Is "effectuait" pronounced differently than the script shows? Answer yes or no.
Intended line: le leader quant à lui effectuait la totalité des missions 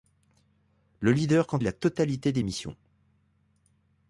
yes